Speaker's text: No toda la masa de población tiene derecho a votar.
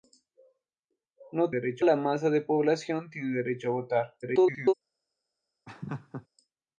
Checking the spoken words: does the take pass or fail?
fail